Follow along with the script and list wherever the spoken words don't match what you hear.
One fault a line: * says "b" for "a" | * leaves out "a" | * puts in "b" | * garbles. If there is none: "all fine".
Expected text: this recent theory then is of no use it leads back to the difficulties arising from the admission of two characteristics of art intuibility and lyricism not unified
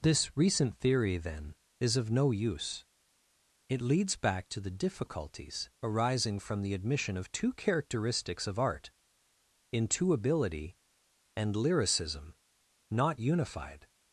all fine